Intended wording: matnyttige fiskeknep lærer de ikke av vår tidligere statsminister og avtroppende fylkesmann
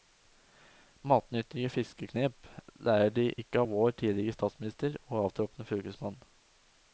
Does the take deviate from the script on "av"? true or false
false